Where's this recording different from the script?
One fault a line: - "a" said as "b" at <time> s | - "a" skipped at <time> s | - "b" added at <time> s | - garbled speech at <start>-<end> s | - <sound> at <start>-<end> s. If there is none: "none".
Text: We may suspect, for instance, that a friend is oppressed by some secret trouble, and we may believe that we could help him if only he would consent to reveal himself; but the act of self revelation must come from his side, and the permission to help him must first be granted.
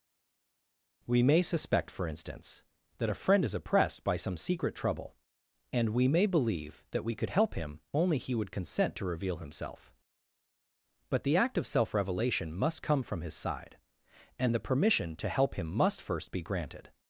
- "if" skipped at 7.8 s